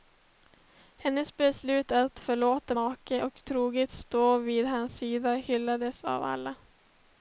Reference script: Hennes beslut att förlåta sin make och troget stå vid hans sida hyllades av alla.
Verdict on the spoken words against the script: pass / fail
fail